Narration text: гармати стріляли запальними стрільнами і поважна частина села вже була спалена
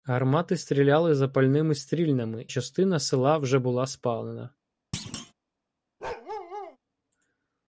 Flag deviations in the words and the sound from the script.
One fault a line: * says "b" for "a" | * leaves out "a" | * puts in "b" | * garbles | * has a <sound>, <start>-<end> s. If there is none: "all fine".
* leaves out "і поважна"
* has a thud, 4.9-5.3 s
* has a bark, 6.0-6.8 s